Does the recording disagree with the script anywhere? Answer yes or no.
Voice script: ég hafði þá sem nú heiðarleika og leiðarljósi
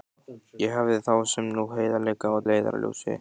no